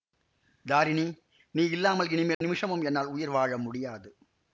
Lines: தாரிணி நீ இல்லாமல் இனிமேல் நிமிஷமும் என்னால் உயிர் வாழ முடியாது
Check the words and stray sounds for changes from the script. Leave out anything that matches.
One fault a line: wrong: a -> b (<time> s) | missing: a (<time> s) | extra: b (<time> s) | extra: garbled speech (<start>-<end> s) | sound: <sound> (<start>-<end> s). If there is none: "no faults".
sound: dropout (2.3-2.4 s)